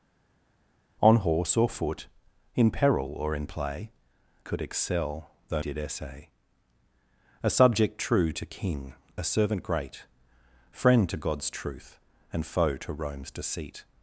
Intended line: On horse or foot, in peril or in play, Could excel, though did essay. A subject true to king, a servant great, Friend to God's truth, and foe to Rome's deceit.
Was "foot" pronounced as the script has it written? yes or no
yes